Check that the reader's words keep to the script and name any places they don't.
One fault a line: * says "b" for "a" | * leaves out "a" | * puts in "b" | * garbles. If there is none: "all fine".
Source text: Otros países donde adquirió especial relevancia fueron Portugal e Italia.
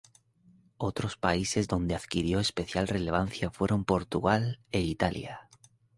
all fine